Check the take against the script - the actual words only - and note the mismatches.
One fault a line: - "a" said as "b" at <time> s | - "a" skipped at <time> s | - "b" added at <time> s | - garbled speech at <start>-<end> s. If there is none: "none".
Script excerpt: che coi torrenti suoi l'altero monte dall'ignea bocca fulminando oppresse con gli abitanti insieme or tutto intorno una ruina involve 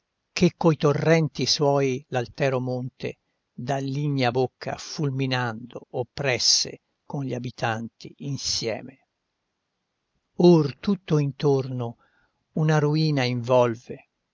none